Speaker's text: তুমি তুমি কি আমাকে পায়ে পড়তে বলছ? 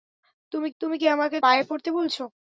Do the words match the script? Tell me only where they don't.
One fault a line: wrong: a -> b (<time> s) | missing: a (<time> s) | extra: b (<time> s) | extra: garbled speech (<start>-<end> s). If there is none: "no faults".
no faults